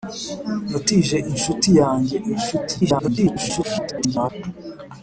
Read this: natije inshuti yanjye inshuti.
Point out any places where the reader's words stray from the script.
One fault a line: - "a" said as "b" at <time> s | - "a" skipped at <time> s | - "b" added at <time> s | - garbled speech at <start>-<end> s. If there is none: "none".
- garbled speech at 2.8-4.3 s